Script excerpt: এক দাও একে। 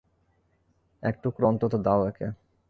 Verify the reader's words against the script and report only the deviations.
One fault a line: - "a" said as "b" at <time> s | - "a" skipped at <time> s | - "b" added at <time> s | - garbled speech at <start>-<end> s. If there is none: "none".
- "টুকরো অন্তত" added at 1.2 s